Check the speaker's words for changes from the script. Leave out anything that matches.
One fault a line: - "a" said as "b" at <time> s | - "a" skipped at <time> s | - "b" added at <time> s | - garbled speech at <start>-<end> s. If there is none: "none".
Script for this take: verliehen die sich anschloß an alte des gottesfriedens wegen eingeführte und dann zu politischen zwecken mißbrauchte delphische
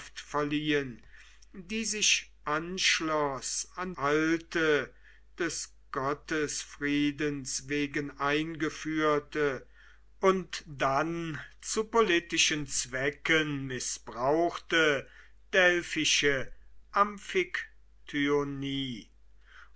none